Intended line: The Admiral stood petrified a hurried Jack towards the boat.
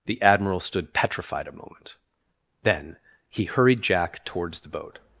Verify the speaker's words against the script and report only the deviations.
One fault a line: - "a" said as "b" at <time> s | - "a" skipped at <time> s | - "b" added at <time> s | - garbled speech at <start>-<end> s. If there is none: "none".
- "moment Then he" added at 1.5 s